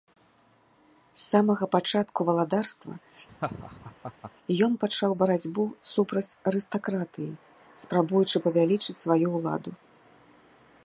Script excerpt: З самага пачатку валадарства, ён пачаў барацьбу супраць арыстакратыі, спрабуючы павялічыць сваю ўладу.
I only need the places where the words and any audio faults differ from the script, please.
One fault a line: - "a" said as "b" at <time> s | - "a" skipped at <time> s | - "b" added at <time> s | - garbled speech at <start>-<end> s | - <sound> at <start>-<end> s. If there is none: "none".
- laugh at 3.3-4.3 s